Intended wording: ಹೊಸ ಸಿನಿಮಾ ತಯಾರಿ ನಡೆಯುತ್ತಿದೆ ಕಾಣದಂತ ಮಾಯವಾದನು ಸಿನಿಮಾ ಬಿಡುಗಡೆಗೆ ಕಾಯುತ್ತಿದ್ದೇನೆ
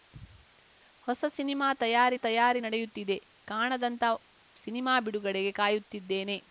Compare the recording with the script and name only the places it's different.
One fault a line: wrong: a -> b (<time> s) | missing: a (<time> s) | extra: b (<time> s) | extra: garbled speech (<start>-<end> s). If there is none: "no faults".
extra: ತಯಾರಿ (2.2 s)
missing: ಮಾಯವಾದನು (4.0 s)